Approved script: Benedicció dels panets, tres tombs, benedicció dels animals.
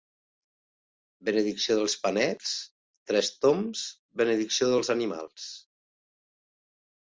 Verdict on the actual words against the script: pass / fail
pass